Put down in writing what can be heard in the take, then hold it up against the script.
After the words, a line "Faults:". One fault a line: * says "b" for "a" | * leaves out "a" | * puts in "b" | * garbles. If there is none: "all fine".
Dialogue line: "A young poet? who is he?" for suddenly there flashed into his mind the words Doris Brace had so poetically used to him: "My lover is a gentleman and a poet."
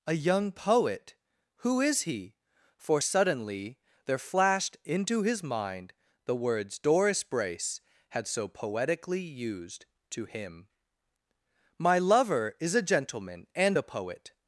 "A young poet? who is he?" for suddenly there flashed into his mind the words Doris Brace had so poetically used to him: "My lover is a gentleman and a poet."
Faults:
all fine